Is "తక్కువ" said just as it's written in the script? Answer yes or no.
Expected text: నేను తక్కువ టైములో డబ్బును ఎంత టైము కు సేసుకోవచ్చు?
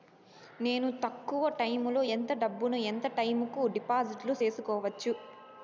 yes